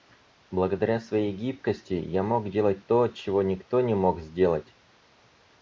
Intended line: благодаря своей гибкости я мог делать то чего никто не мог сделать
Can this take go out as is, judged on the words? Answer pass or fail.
pass